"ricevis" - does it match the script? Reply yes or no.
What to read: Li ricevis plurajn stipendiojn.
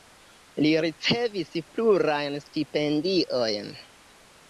yes